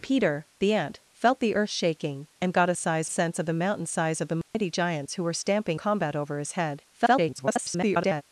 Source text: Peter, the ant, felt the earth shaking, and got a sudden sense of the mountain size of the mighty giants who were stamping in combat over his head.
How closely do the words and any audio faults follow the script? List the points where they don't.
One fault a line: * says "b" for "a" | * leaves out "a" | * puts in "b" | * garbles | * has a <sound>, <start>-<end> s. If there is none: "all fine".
* says "size" for "sudden"
* has a dropout, 4.4-4.5 s
* leaves out "in"
* garbles